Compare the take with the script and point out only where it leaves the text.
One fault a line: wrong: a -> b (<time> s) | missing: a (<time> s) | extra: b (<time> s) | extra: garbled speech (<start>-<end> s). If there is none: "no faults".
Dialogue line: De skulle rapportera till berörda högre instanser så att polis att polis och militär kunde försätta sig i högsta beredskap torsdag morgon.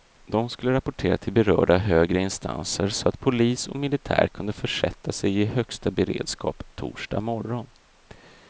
missing: att polis (3.7 s)